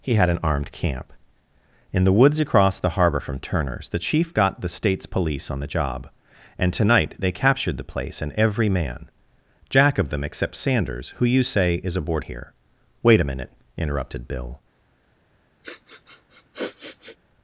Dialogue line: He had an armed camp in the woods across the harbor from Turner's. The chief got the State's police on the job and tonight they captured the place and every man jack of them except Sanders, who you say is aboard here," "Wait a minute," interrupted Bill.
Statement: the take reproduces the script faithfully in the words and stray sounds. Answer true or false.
false